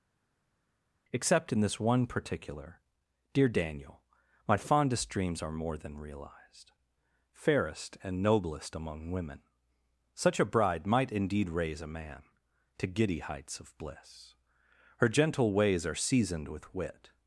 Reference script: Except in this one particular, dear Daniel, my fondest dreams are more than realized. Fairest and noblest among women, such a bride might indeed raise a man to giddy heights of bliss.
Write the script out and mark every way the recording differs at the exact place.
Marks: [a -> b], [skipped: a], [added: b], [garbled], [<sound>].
Except in this one particular, dear Daniel, my fondest dreams are more than realized. Fairest and noblest among women, such a bride might indeed raise a man to giddy heights of bliss. [added: Her gentle ways are seasoned with wit]